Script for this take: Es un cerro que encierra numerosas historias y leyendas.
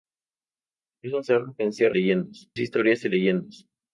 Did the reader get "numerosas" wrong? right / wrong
wrong